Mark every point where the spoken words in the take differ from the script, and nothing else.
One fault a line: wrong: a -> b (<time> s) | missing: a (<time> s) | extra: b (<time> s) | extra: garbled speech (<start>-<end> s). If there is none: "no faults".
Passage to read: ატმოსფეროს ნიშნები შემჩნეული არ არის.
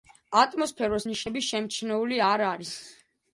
no faults